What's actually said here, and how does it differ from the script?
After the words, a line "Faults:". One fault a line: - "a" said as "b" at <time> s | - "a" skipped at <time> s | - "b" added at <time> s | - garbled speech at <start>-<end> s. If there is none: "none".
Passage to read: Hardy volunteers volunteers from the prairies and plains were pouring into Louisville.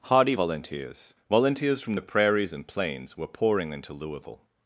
Hardy volunteers volunteers from the prairies and plains were pouring into Louisville.
Faults:
none